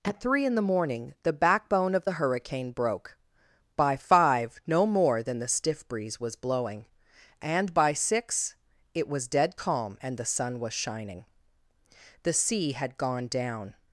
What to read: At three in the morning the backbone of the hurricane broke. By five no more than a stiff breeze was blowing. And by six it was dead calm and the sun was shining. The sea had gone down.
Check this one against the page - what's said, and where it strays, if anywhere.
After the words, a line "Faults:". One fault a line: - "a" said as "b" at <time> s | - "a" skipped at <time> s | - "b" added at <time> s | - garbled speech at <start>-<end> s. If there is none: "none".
At three in the morning the backbone of the hurricane broke. By five no more than the stiff breeze was blowing. And by six it was dead calm and the sun was shining. The sea had gone down.
Faults:
- "a" said as "the" at 5.4 s